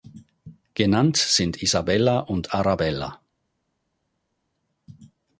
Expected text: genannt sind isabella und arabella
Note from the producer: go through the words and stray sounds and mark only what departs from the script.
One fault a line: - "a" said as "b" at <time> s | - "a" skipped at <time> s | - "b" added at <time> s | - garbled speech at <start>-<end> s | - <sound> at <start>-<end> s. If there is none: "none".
none